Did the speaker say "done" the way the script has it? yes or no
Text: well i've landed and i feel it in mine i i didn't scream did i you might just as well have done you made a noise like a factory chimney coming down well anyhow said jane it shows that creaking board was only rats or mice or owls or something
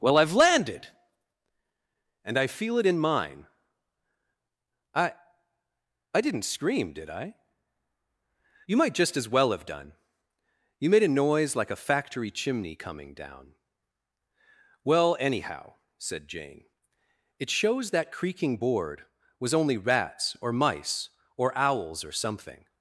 yes